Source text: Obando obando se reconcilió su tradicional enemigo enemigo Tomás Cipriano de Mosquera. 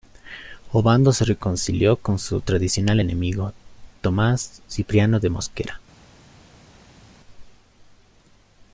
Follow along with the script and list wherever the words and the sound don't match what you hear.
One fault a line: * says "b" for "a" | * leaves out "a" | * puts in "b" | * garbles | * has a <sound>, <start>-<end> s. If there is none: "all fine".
* leaves out "obando"
* puts in "con"
* leaves out "enemigo"